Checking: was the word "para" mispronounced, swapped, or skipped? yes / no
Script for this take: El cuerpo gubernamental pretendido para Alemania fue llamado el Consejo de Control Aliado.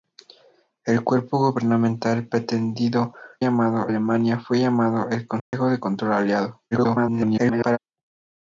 yes